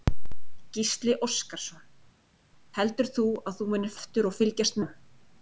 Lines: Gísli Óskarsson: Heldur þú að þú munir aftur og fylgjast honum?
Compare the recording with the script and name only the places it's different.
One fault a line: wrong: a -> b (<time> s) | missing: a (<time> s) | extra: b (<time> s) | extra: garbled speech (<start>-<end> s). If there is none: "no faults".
no faults